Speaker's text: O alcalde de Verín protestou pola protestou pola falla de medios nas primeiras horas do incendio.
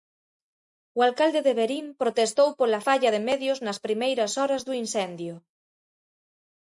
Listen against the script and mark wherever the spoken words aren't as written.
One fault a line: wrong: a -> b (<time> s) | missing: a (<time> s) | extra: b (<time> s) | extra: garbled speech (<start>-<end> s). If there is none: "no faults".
missing: protestou pola (2.8 s)